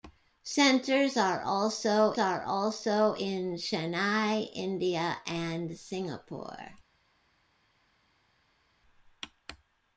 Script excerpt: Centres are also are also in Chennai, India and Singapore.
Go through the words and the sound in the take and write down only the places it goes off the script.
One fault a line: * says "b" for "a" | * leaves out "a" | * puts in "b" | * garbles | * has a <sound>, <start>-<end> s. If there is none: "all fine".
all fine